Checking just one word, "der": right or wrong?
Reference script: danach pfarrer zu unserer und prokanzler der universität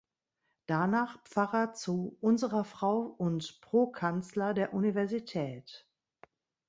right